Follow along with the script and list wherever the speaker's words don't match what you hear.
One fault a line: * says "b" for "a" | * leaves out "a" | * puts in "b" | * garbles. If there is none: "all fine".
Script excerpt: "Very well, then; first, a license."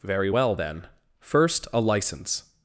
all fine